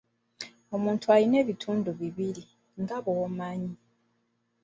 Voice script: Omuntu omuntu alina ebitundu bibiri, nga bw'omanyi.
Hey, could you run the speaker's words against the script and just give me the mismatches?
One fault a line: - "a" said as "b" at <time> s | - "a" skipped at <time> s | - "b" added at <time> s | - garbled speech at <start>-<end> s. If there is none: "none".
- "omuntu" skipped at 1.1 s